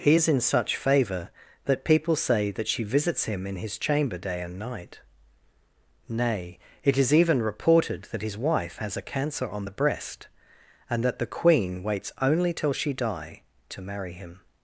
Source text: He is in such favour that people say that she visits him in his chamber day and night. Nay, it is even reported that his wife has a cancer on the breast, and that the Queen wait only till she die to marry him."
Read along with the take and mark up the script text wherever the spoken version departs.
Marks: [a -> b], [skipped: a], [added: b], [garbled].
He is in such favour that people say that she visits him in his chamber day and night. Nay, it is even reported that his wife has a cancer on the breast, and that the Queen [wait -> waits] only till she die to marry him."